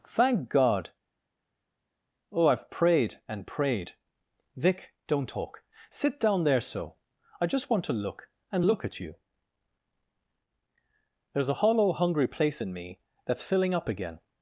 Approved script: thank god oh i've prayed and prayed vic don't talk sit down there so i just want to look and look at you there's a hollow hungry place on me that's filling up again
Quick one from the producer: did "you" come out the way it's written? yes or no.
yes